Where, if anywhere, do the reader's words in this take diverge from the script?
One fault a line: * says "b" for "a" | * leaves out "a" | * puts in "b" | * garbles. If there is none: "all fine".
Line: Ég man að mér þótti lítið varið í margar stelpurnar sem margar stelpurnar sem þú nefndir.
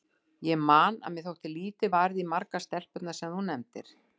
* leaves out "margar stelpurnar sem"